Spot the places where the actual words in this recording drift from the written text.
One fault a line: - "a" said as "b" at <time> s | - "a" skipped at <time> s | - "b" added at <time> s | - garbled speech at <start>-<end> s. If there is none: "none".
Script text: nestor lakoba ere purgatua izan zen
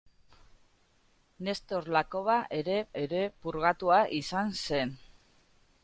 - "ere" added at 3.0 s